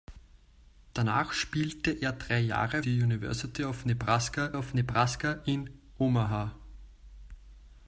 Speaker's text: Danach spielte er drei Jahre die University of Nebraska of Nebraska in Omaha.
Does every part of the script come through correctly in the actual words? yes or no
yes